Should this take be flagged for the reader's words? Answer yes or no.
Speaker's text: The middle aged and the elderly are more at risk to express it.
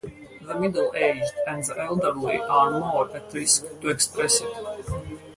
no